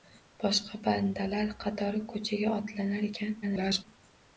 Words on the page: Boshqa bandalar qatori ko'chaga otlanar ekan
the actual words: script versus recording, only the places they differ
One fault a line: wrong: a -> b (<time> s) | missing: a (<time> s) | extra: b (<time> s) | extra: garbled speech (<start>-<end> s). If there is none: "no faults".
extra: garbled speech (3.4-3.8 s)